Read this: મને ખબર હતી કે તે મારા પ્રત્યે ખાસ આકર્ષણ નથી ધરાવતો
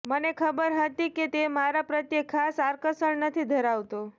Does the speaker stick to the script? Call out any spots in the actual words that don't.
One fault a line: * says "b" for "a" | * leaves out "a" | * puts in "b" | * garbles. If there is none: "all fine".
all fine